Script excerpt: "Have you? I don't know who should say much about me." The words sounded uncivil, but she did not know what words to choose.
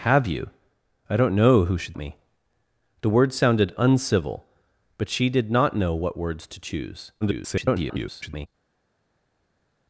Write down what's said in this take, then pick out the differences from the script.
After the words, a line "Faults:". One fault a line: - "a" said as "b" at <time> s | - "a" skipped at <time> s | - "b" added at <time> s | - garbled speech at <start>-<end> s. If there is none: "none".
"Have you? I don't know who should me." The words sounded uncivil, but she did not know what words to choose. [garbled]
Faults:
- "say much about" skipped at 1.9 s
- garbled speech at 7.2-8.5 s